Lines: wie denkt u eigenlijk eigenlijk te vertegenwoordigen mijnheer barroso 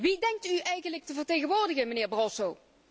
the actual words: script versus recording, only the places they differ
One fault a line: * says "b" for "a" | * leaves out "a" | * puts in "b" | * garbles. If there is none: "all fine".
* leaves out "eigenlijk"